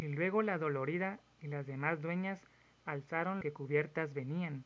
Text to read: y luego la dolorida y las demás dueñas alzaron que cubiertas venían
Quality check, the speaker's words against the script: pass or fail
pass